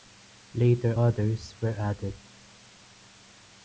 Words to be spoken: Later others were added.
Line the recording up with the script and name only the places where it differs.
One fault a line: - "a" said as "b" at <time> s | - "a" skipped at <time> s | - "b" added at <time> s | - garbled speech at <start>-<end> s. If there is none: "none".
none